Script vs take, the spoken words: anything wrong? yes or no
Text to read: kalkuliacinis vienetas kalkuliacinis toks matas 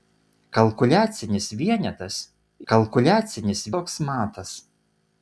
no